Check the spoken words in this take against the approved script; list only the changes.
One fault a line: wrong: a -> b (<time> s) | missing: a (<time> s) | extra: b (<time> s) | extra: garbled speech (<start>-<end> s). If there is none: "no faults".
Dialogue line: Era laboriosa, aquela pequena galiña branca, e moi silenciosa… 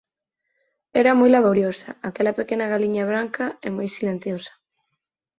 extra: moi (1.2 s)